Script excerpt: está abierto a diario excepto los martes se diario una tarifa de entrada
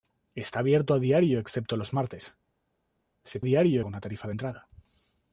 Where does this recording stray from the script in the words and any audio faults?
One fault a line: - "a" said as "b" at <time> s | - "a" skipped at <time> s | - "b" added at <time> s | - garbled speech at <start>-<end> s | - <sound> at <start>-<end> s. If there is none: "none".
none